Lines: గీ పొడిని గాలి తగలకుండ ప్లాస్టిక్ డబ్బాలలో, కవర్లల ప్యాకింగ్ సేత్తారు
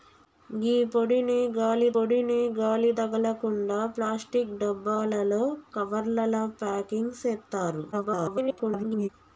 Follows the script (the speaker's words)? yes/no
no